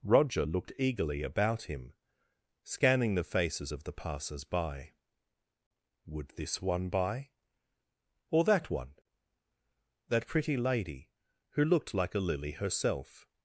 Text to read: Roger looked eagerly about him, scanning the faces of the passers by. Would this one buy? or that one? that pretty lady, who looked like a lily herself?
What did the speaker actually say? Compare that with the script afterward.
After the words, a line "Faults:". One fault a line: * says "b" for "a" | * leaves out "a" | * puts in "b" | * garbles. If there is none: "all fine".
Roger looked eagerly about him, scanning the faces of the passers by. Would this one buy? or that one? that pretty lady, who looked like a lily herself?
Faults:
all fine